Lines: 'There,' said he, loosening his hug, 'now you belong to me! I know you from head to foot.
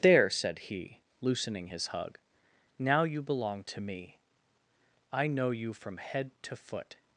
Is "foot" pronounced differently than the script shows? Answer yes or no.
no